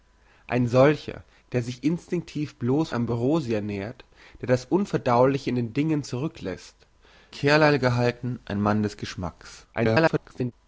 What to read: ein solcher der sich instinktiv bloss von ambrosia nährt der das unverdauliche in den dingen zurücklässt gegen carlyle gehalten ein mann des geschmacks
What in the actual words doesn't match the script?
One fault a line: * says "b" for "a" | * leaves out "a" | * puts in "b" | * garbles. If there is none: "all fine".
* leaves out "von"
* leaves out "gegen"
* garbles